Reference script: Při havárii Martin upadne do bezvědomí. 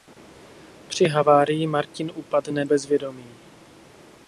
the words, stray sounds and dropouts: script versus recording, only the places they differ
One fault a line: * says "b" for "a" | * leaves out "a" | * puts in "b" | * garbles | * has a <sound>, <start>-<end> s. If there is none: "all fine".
* leaves out "do"